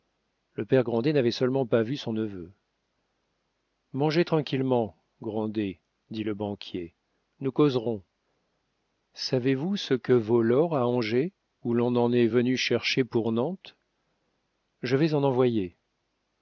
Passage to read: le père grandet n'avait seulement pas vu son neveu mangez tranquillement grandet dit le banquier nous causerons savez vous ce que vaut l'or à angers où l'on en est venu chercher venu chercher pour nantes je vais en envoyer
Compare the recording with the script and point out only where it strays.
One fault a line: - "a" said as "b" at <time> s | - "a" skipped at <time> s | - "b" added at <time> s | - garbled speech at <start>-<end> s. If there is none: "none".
- "venu chercher" skipped at 13.0 s